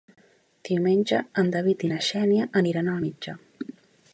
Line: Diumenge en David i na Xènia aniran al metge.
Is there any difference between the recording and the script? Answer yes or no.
no